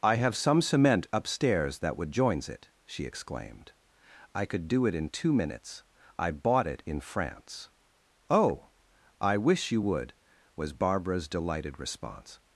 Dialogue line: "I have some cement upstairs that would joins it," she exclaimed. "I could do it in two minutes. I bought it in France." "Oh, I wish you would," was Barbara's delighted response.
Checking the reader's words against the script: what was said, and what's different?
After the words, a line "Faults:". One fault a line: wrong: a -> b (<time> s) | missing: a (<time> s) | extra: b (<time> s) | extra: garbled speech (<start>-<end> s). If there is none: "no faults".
"I have some cement upstairs that would joins it," she exclaimed. "I could do it in two minutes. I bought it in France." "Oh, I wish you would," was Barbara's delighted response.
Faults:
no faults